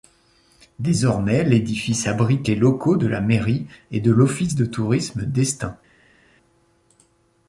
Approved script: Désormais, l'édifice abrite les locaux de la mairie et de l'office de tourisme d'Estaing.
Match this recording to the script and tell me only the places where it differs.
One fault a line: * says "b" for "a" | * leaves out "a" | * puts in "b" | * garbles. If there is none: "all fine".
all fine